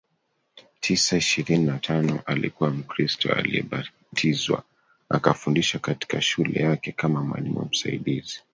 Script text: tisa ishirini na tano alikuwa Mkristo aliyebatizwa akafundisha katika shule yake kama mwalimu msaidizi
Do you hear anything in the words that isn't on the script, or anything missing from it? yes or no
no